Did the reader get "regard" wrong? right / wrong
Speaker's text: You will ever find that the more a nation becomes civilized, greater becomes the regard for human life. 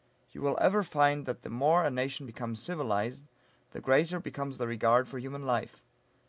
right